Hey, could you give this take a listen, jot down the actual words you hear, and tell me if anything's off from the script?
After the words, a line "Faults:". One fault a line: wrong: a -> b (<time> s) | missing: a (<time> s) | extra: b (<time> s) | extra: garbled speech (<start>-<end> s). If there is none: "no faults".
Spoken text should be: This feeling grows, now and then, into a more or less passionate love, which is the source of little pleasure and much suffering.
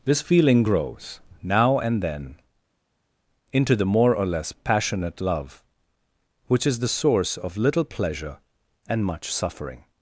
This feeling grows, now and then, into the more or less passionate love, which is the source of little pleasure and much suffering.
Faults:
wrong: a -> the (3.8 s)